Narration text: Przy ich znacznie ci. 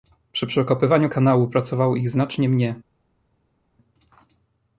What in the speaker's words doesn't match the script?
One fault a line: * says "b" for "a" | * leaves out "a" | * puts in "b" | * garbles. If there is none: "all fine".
* puts in "przekopywaniu kanału pracowało"
* says "mnie" for "ci"